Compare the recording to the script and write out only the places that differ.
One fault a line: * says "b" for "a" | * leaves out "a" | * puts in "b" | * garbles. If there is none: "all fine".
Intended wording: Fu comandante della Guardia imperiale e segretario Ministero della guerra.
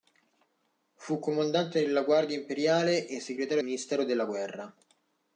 all fine